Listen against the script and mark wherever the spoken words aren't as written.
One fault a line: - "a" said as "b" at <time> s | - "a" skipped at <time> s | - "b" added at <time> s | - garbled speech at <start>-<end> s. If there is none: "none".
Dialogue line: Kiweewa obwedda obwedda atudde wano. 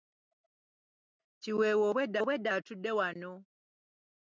none